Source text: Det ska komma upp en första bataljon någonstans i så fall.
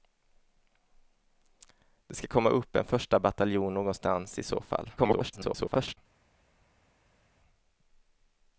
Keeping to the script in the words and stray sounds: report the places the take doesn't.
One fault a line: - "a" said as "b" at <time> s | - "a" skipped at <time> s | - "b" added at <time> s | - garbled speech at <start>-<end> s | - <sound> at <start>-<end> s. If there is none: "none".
- garbled speech at 5.0-6.0 s